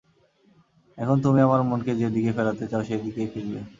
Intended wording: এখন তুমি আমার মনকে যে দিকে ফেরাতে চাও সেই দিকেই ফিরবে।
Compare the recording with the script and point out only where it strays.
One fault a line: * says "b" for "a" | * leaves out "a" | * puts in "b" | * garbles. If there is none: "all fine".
all fine